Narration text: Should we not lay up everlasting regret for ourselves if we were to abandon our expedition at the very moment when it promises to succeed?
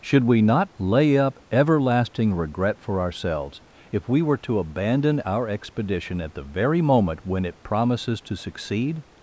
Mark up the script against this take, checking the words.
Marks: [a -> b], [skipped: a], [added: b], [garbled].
Should we not lay up everlasting regret for ourselves if we were to abandon our expedition at the very moment when it promises to succeed?